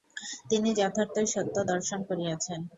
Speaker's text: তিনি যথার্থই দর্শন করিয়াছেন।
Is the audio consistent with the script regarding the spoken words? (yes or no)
no